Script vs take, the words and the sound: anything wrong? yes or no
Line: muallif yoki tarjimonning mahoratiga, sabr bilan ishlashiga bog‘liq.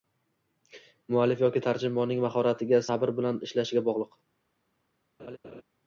yes